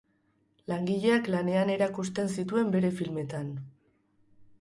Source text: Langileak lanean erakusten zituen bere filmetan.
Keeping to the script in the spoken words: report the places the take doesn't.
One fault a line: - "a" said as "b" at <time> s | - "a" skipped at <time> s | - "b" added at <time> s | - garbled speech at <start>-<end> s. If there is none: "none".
none